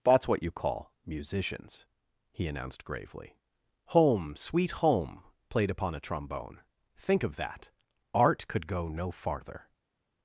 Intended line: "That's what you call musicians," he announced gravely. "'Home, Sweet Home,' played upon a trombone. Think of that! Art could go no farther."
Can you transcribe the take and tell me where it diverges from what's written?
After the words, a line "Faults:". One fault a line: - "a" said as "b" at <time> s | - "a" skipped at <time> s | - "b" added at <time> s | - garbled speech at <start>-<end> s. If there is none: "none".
"That's what you call musicians," he announced gravely. "'Home, Sweet Home,' played upon a trombone. Think of that! Art could go no farther."
Faults:
none